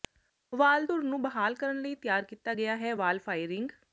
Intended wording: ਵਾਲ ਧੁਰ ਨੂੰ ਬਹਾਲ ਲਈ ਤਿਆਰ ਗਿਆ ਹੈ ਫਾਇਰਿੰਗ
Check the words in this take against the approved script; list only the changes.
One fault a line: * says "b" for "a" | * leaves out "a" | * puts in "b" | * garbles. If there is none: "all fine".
* puts in "ਕਰਨ"
* puts in "ਕੀਤਾ"
* puts in "ਵਾਲ"